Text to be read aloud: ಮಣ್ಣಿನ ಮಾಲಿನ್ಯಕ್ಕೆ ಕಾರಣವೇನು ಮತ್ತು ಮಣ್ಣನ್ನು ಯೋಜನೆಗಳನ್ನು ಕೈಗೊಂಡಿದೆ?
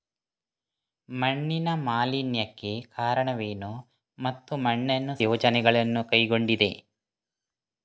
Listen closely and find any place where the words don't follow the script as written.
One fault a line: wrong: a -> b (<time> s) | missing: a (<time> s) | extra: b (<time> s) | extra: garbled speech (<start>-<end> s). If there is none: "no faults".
no faults